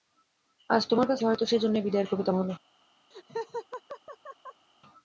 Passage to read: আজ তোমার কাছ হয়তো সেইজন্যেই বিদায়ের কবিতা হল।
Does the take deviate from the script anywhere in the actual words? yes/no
no